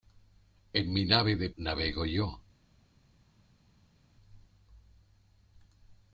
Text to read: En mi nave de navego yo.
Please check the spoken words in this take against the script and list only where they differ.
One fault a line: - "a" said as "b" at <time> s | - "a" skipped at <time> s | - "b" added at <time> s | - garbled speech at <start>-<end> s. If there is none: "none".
none